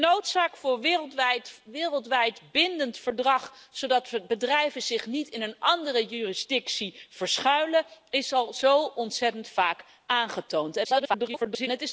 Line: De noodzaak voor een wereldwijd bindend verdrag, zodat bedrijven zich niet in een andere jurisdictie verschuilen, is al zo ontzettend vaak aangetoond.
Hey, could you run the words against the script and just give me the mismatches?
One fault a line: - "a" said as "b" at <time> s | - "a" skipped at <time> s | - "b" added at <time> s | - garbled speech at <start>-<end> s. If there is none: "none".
- garbled speech at 10.8-11.7 s